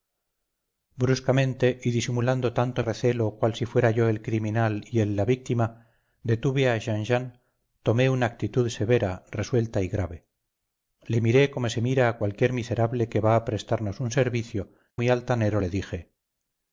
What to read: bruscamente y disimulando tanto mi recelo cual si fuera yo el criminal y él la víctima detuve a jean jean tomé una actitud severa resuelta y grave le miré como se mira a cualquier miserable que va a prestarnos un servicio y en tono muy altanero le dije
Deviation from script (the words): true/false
true